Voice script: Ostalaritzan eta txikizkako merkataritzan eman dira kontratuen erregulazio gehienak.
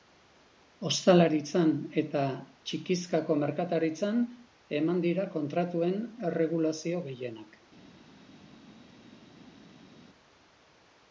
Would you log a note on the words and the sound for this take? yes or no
no